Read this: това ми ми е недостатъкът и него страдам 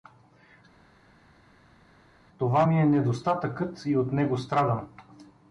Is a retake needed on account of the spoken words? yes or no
yes